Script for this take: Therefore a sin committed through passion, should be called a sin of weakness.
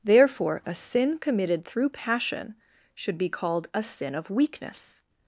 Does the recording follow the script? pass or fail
pass